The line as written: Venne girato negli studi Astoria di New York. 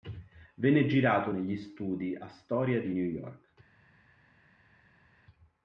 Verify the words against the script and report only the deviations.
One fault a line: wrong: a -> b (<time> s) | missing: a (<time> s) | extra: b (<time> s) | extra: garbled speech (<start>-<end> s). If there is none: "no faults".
no faults